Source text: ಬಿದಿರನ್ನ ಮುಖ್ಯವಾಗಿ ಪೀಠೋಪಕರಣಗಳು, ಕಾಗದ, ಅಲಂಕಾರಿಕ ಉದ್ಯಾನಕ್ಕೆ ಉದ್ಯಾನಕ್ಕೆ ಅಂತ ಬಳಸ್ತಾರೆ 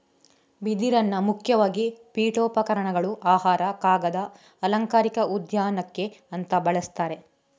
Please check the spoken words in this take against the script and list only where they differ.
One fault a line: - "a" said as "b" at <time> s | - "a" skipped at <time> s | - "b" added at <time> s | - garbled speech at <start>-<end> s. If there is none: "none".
- "ಆಹಾರ" added at 3.2 s
- "ಉದ್ಯಾನಕ್ಕೆ" skipped at 6.1 s